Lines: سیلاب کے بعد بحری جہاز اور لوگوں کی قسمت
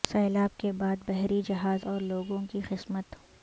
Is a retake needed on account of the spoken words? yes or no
no